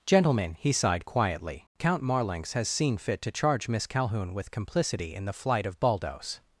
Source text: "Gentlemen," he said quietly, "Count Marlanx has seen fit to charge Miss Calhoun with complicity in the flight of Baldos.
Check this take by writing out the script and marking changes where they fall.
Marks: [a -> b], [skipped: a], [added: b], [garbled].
"Gentlemen," he [said -> sighed] quietly, "Count Marlanx has seen fit to charge Miss Calhoun with complicity in the flight of Baldos.